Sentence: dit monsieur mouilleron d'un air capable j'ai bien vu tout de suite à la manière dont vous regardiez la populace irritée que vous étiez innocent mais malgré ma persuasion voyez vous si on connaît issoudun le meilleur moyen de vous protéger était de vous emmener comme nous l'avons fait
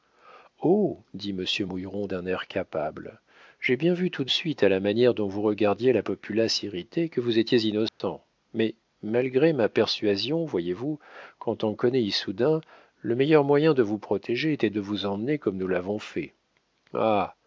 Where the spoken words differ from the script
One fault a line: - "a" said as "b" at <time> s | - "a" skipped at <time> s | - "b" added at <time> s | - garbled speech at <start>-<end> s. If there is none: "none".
- "si" said as "quand" at 11.4 s